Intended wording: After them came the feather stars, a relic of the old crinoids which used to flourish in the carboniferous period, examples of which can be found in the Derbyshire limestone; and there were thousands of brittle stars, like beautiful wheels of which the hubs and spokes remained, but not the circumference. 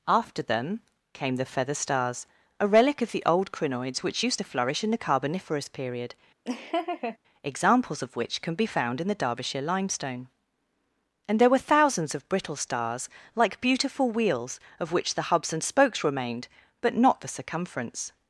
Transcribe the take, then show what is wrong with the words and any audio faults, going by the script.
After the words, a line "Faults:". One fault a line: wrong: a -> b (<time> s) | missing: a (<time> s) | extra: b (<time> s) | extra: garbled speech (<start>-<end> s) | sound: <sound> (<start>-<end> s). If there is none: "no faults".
After them came the feather stars, a relic of the old crinoids which used to flourish in the carboniferous period, examples of which can be found in the Derbyshire limestone; and there were thousands of brittle stars, like beautiful wheels of which the hubs and spokes remained, but not the circumference.
Faults:
sound: laugh (6.4-7.2 s)